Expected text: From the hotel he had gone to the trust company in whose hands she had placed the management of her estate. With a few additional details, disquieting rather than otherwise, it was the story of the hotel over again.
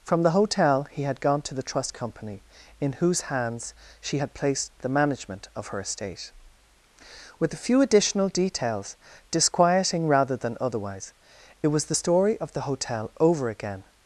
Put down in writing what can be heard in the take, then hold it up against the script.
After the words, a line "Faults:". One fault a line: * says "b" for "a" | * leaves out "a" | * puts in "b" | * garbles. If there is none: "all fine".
From the hotel he had gone to the trust company in whose hands she had placed the management of her estate. With a few additional details, disquieting rather than otherwise, it was the story of the hotel over again.
Faults:
all fine